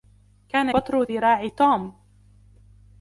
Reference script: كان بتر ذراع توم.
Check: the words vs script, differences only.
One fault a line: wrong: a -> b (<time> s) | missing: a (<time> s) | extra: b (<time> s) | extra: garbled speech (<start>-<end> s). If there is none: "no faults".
no faults